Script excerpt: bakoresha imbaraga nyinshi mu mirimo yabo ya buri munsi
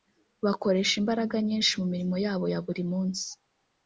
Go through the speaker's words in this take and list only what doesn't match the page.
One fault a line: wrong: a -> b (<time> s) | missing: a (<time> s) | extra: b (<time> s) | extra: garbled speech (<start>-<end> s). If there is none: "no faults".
no faults